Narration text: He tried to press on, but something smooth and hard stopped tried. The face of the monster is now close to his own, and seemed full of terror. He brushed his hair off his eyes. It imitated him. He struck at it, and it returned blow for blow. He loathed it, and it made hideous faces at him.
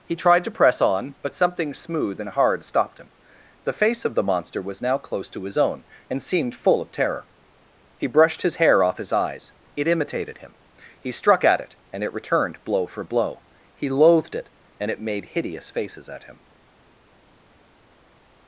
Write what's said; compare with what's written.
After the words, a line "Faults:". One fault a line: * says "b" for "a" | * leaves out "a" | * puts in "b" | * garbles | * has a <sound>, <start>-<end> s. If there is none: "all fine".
He tried to press on, but something smooth and hard stopped him. The face of the monster was now close to his own, and seemed full of terror. He brushed his hair off his eyes. It imitated him. He struck at it, and it returned blow for blow. He loathed it, and it made hideous faces at him.
Faults:
* says "him" for "tried"
* says "was" for "is"